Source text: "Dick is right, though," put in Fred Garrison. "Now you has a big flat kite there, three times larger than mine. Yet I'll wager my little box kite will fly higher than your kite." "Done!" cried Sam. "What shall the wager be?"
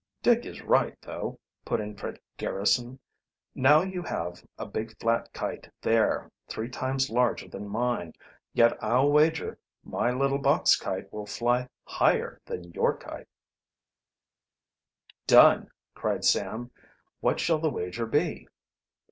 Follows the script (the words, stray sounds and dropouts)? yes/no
no